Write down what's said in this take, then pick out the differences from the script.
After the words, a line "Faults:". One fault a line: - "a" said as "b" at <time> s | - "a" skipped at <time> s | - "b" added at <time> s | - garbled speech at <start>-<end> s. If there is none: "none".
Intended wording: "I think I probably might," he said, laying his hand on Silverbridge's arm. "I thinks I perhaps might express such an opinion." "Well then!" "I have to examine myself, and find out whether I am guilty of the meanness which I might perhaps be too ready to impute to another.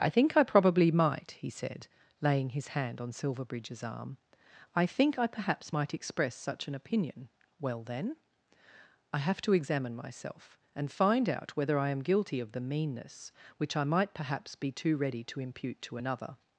"I think I probably might," he said, laying his hand on Silverbridge's arm. "I think I perhaps might express such an opinion." "Well then!" "I have to examine myself, and find out whether I am guilty of the meanness which I might perhaps be too ready to impute to another.
Faults:
- "thinks" said as "think" at 4.9 s